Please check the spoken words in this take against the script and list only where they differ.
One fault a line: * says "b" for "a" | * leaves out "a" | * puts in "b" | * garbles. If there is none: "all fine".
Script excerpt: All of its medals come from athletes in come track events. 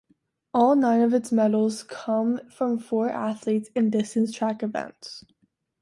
* puts in "nine"
* puts in "four"
* says "distance" for "come"